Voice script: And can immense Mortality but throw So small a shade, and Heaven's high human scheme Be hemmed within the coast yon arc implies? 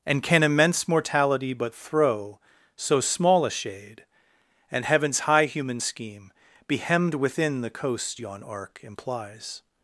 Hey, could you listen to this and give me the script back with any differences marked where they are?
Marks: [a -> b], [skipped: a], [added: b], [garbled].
And can immense Mortality but throw So small a shade, and Heaven's high human scheme Be hemmed within the coast yon arc implies?